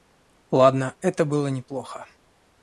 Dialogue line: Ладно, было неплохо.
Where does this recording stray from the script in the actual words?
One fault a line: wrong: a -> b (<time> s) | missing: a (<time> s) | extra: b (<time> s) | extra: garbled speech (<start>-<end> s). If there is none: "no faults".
extra: это (1.0 s)